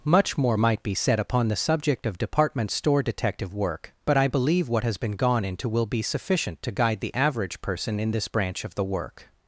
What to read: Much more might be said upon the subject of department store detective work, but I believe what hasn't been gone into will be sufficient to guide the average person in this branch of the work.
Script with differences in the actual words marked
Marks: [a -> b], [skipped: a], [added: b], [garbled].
Much more might be said upon the subject of department store detective work, but I believe what [hasn't -> has] been gone into will be sufficient to guide the average person in this branch of the work.